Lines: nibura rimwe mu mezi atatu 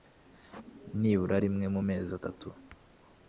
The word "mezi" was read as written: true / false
true